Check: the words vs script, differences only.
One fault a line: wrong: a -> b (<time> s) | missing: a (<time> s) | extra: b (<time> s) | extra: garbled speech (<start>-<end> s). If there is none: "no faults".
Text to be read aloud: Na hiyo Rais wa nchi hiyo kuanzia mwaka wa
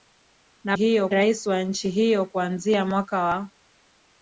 no faults